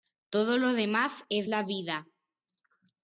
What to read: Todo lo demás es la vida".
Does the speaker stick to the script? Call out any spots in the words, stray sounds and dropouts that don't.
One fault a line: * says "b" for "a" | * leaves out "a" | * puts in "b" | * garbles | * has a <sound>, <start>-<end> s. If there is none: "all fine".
all fine